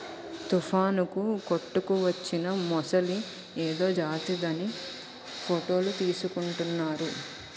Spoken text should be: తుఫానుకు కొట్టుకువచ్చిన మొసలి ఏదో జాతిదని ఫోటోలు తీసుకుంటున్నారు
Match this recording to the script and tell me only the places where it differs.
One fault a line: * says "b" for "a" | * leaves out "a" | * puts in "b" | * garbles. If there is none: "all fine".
all fine